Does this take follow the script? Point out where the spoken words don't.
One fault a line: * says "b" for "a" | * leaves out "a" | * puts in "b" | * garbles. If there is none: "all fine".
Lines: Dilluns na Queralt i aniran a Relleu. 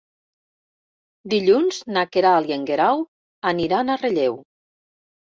* puts in "en Guerau"